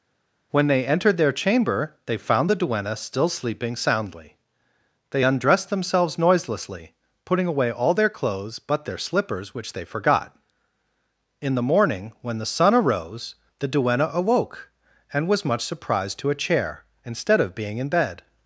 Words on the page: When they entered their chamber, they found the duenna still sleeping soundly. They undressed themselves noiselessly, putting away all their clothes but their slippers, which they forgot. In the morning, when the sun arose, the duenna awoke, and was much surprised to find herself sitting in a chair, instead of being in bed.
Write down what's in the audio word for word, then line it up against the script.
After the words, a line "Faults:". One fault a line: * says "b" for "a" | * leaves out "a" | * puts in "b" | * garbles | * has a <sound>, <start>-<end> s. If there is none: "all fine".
When they entered their chamber, they found the duenna still sleeping soundly. They undressed themselves noiselessly, putting away all their clothes but their slippers, which they forgot. In the morning, when the sun arose, the duenna awoke, and was much surprised to a chair, instead of being in bed.
Faults:
* leaves out "find herself sitting in"